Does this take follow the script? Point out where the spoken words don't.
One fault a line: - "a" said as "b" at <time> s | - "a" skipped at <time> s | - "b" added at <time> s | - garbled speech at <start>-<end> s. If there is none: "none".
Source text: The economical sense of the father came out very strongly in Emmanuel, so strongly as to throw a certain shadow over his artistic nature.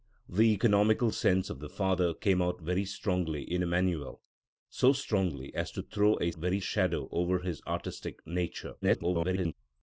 - "certain" said as "very" at 6.3 s
- garbled speech at 8.8-9.5 s